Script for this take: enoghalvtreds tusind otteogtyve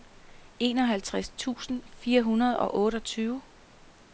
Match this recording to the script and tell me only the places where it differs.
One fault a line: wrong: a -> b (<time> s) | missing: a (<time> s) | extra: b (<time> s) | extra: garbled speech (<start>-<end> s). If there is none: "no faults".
extra: fire hundrede og (2.0 s)